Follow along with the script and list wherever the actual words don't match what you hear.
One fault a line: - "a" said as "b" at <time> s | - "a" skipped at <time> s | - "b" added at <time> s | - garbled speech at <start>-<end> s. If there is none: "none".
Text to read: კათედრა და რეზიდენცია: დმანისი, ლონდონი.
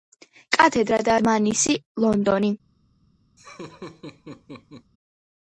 - "რეზიდენცია" skipped at 1.2 s